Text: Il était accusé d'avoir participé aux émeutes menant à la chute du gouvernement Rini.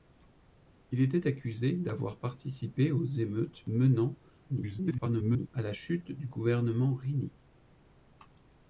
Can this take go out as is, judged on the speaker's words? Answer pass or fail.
fail